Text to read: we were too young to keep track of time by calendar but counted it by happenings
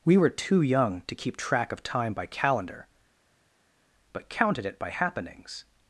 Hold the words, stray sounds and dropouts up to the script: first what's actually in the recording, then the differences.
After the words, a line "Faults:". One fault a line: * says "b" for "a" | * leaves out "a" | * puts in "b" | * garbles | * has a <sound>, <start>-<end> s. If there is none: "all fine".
we were too young to keep track of time by calendar but counted it by happenings
Faults:
all fine